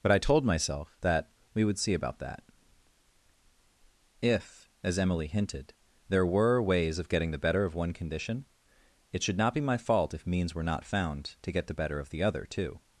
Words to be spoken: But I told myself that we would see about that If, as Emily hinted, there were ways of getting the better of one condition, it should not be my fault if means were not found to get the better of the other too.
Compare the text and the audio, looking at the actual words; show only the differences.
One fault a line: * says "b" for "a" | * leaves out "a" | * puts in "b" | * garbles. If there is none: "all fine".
all fine